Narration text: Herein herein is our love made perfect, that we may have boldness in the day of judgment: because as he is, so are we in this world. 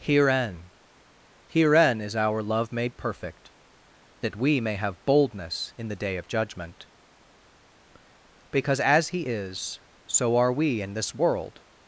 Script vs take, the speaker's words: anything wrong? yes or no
no